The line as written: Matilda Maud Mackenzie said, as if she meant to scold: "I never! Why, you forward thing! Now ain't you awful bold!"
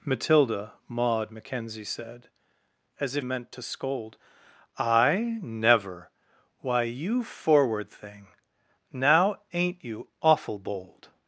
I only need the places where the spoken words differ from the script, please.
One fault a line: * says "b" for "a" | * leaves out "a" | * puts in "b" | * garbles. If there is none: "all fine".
* leaves out "she"